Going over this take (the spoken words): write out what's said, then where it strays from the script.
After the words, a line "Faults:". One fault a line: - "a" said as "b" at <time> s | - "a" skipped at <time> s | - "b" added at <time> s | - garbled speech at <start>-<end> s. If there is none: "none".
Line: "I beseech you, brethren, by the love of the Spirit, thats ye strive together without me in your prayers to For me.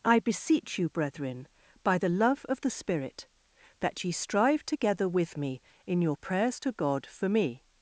"I beseech you, brethren, by the love of the Spirit, that ye strive together with me in your prayers to God for me.
Faults:
- "thats" said as "that" at 3.8 s
- "without" said as "with" at 5.1 s
- "God" added at 6.7 s